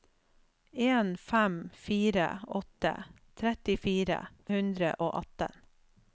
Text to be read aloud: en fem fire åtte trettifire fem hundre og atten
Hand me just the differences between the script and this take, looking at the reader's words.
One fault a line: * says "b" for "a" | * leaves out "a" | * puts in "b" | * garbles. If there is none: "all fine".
* leaves out "fem"